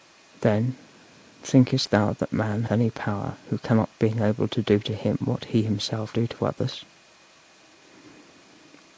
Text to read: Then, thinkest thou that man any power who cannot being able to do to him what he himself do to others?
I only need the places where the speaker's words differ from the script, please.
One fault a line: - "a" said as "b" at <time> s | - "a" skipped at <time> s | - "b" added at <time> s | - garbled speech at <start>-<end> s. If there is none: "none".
none